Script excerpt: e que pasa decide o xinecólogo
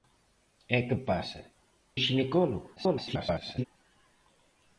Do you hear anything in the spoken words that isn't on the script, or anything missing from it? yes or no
yes